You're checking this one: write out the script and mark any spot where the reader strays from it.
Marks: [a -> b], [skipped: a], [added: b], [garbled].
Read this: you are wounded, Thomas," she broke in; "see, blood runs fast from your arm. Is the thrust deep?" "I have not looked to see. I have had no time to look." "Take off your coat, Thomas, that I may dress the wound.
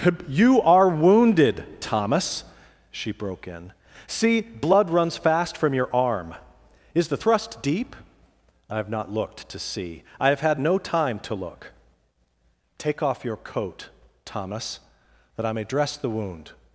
you are wounded, Thomas," she broke in; "see, blood runs fast from your arm. Is the thrust deep?" "I have not looked to see. I have had no time to look." "Take off your coat, Thomas, that I may dress the wound.